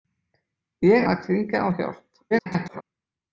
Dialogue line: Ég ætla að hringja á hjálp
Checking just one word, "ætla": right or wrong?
wrong